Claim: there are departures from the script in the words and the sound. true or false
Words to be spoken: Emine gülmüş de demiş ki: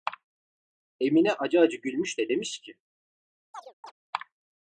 true